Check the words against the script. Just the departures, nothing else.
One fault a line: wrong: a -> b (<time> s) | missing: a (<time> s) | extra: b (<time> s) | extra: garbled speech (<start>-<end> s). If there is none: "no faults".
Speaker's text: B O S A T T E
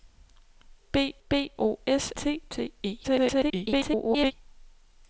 extra: b (1.3 s)
missing: A (2.1 s)
extra: garbled speech (3.0-4.3 s)